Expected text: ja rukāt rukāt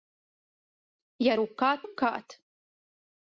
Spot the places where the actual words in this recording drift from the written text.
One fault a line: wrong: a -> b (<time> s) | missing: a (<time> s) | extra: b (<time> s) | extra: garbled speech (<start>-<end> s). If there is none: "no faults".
no faults